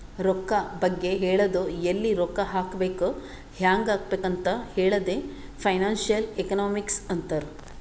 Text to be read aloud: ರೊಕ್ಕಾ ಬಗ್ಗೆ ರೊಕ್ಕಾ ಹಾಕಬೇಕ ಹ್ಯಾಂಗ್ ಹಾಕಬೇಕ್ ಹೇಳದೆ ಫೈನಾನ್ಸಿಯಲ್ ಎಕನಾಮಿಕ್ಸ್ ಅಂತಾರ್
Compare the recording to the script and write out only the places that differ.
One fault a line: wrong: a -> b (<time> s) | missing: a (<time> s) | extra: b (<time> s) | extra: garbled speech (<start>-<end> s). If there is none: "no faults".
extra: ಹೇಳದು ಎಲ್ಲಿ (1.2 s)
extra: ಅಂತ್ (4.2 s)